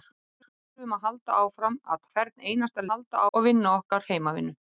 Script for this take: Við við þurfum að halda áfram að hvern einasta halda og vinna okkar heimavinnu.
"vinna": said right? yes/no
yes